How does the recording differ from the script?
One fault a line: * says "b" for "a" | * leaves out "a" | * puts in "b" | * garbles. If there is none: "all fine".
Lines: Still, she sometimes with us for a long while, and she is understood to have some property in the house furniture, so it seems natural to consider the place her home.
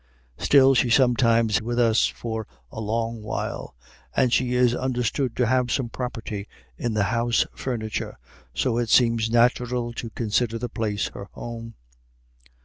all fine